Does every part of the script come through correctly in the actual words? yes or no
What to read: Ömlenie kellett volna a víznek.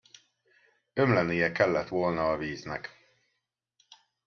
yes